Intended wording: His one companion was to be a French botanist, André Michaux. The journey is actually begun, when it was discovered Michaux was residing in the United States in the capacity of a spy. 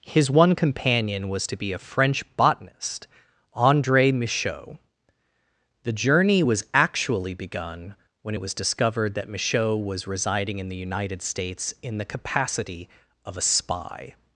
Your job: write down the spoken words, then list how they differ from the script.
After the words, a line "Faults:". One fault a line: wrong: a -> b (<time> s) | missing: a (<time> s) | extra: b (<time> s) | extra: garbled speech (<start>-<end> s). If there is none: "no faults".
His one companion was to be a French botanist, André Michaux. The journey was actually begun, when it was discovered that Michaux was residing in the United States in the capacity of a spy.
Faults:
wrong: is -> was (6.4 s)
extra: that (9.1 s)